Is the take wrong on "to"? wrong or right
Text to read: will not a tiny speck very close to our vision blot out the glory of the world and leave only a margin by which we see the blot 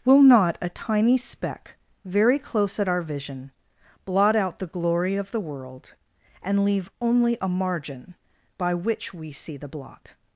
wrong